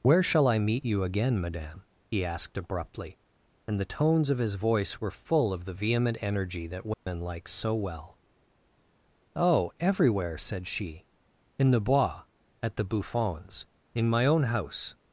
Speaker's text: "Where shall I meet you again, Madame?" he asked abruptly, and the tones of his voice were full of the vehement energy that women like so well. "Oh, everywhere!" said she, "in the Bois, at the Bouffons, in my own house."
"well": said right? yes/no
yes